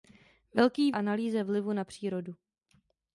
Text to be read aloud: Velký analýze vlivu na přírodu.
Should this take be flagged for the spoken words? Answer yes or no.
no